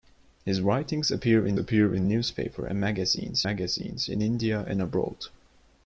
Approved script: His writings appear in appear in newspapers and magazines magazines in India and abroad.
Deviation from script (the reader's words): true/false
false